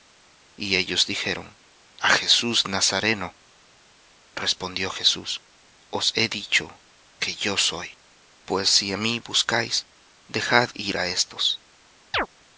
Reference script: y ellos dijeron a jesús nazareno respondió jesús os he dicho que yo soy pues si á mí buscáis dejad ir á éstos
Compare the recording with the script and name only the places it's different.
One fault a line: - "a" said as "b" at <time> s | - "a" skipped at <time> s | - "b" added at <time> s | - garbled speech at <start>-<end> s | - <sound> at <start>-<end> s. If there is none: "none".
- chirp at 12.1-12.3 s